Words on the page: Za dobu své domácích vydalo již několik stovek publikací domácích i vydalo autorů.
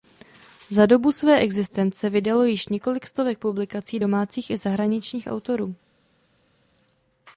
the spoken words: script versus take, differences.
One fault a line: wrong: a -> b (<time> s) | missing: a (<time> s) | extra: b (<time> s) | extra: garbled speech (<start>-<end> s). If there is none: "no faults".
wrong: domácích -> existence (1.4 s)
wrong: vydalo -> zahraničních (4.6 s)